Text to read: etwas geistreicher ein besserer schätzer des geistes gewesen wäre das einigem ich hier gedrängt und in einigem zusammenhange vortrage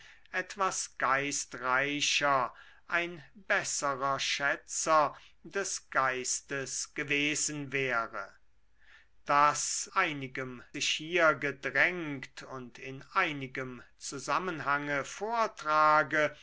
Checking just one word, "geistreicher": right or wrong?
right